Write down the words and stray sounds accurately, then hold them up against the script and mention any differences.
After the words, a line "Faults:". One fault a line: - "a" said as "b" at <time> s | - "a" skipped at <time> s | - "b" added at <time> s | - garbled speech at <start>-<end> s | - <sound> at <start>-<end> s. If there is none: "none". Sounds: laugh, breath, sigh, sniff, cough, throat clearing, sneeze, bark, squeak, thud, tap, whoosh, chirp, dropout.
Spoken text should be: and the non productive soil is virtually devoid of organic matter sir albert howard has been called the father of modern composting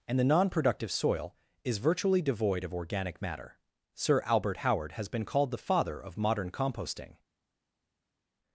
and the non productive soil is virtually devoid of organic matter sir albert howard has been called the father of modern composting
Faults:
none